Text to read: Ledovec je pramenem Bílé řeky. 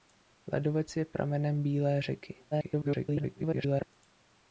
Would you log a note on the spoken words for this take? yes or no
yes